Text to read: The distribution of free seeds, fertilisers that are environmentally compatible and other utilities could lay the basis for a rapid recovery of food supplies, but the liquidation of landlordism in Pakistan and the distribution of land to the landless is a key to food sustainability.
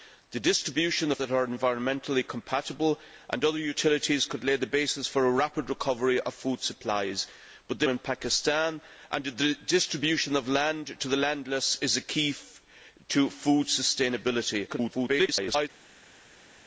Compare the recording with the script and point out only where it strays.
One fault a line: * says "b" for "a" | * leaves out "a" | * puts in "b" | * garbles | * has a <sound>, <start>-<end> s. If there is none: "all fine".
* leaves out "free seeds fertilisers"
* leaves out "liquidation of landlordism"
* garbles